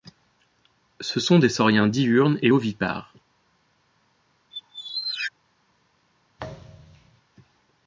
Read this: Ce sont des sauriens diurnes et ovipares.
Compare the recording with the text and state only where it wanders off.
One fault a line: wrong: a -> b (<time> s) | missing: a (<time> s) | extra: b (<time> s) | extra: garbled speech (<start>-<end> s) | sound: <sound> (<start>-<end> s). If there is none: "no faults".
sound: squeak (4.5-5.3 s)
sound: thud (6.4-7.2 s)